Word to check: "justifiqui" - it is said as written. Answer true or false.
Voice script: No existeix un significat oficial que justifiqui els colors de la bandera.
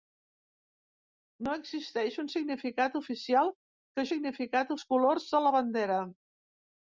false